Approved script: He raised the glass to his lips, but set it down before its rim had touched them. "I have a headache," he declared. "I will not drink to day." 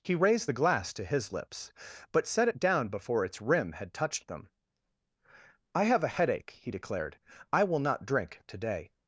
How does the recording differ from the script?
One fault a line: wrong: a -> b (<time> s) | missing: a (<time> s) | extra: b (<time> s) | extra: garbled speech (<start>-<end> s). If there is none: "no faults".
no faults